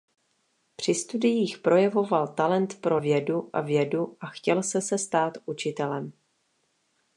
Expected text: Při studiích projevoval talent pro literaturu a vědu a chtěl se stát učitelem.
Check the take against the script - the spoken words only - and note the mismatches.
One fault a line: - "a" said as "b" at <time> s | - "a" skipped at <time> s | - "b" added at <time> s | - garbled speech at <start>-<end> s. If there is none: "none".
- "literaturu" said as "vědu" at 3.0 s
- "se" added at 4.8 s